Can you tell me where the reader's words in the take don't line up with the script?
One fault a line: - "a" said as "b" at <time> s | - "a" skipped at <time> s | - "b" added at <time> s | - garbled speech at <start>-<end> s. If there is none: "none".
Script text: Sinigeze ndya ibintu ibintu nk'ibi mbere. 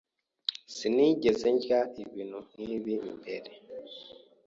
- "ibintu" skipped at 2.4 s